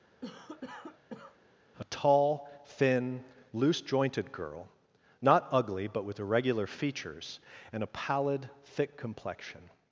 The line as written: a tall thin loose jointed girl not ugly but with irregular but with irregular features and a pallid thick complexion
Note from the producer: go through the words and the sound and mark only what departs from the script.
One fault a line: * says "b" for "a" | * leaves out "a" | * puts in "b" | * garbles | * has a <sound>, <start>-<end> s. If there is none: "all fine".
* has a cough, 0.2-1.4 s
* leaves out "but with irregular"